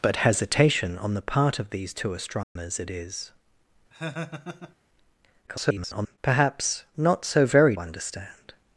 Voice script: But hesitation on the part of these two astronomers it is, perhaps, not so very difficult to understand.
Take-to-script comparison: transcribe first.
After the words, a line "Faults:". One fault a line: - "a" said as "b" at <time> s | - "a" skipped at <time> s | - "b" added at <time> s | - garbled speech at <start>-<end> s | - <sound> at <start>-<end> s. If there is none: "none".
But hesitation on the part of these two astronomers it is, [garbled] perhaps, not so very understand.
Faults:
- dropout at 2.4-2.6 s
- laugh at 3.9-4.8 s
- garbled speech at 5.5-6.2 s
- "difficult to" skipped at 7.7 s